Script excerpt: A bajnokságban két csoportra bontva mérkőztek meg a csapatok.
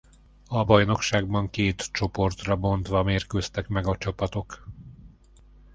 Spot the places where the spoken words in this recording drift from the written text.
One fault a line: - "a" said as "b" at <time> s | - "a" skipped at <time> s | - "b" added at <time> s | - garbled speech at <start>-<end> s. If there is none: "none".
none